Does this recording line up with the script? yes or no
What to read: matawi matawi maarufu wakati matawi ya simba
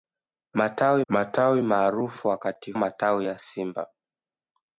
yes